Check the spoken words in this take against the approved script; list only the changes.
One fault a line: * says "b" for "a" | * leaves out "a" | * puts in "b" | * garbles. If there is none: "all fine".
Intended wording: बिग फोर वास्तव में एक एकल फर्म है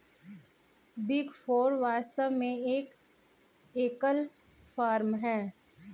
all fine